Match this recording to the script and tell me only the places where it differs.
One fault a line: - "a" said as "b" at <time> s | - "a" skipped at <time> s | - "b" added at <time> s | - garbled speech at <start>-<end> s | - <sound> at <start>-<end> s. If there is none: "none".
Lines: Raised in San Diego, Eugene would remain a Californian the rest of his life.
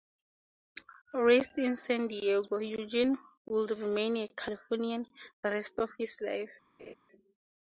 - laugh at 6.8-6.9 s